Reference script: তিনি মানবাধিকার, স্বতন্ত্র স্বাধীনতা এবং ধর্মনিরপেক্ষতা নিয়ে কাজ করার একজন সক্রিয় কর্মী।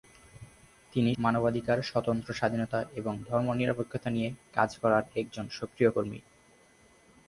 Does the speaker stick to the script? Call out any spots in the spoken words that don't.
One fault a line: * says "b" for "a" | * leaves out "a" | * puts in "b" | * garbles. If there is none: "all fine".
all fine